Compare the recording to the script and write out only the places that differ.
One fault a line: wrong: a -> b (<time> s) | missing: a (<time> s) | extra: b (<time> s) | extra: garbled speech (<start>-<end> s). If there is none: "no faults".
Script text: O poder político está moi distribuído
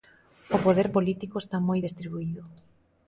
no faults